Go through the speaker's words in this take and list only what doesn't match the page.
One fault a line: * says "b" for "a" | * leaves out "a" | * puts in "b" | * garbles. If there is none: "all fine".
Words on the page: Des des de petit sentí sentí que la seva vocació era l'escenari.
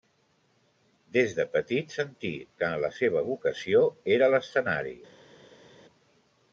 * leaves out "des"
* leaves out "sentí"